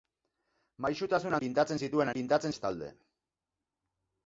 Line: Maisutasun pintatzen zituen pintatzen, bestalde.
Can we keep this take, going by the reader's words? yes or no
yes